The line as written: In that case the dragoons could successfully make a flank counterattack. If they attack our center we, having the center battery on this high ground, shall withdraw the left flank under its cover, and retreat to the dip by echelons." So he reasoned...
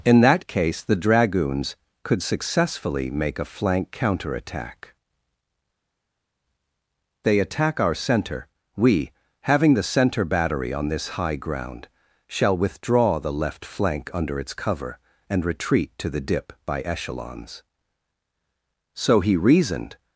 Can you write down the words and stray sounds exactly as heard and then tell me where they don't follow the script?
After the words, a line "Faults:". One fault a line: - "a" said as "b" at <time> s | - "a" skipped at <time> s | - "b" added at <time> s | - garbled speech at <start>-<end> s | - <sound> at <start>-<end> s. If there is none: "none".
In that case the dragoons could successfully make a flank counterattack. They attack our center we, having the center battery on this high ground, shall withdraw the left flank under its cover, and retreat to the dip by echelons." So he reasoned...
Faults:
- "If" skipped at 4.9 s